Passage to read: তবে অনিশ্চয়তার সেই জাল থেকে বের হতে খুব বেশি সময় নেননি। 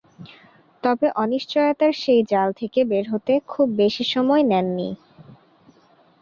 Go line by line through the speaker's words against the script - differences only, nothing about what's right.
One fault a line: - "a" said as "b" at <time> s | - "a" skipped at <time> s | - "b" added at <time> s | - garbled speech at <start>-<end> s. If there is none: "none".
none